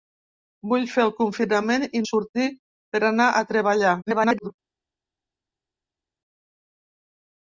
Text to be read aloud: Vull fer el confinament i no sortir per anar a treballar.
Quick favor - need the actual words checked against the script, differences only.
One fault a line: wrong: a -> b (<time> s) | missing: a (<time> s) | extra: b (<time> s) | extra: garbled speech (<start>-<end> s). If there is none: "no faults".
missing: no (2.0 s)
extra: garbled speech (4.0-4.5 s)